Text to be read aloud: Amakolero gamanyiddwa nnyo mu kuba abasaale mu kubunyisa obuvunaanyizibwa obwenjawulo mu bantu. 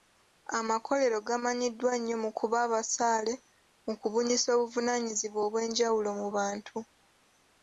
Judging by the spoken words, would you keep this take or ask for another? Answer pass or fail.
pass